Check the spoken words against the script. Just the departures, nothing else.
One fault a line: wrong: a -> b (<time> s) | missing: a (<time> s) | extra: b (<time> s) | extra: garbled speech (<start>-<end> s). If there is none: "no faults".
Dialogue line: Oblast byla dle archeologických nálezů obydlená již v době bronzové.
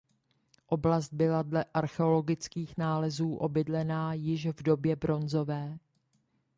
no faults